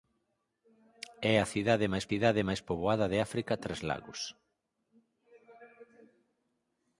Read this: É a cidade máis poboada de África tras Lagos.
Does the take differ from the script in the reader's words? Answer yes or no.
yes